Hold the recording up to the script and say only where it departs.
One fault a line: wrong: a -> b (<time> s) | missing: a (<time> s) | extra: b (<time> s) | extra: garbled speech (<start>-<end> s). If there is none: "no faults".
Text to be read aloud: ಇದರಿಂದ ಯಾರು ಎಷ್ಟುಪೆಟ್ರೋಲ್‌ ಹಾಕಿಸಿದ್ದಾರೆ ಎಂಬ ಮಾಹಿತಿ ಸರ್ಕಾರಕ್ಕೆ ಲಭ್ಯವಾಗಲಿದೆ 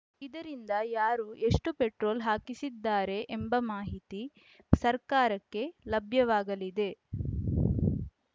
no faults